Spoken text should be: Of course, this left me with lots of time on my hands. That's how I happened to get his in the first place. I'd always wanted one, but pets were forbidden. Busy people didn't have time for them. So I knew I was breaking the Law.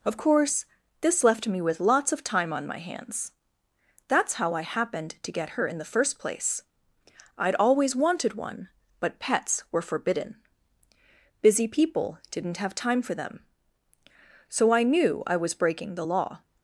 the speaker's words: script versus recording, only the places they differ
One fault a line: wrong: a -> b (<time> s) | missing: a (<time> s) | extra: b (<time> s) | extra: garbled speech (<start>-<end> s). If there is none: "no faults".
wrong: his -> her (5.5 s)